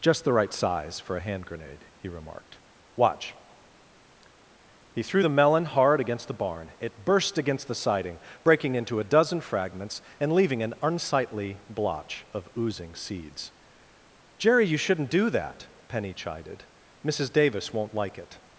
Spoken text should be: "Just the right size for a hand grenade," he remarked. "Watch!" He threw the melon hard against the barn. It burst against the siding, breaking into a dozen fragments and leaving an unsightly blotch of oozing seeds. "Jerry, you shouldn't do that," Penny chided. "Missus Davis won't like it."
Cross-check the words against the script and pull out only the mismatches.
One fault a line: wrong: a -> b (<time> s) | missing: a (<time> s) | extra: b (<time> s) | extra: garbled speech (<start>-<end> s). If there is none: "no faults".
no faults